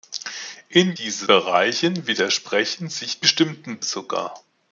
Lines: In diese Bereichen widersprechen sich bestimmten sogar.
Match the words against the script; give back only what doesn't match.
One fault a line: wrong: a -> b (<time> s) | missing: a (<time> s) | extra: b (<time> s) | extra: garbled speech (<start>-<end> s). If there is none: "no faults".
no faults